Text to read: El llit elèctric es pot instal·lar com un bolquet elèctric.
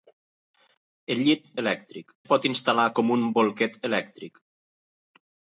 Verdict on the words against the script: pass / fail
pass